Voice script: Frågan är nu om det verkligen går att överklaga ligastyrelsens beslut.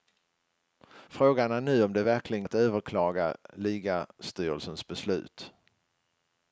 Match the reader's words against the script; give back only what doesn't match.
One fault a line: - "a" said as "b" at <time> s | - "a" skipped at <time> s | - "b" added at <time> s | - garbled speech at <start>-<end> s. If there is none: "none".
- "går" skipped at 2.5 s